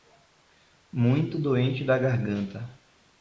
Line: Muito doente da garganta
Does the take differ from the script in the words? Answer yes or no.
no